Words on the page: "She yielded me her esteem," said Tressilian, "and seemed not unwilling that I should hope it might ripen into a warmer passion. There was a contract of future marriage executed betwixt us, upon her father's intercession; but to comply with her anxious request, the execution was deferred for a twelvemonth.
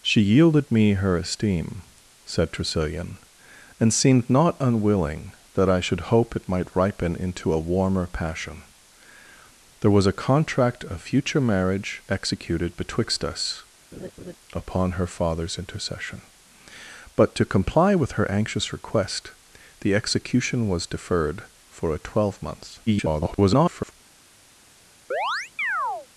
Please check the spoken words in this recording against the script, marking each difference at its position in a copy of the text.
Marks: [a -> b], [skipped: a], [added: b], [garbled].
"She yielded me her esteem," said Tressilian, "and seemed not unwilling that I should hope it might ripen into a warmer passion. There was a contract of future marriage executed betwixt us, upon her father's intercession; but to comply with her anxious request, the execution was deferred for a twelvemonth. [garbled]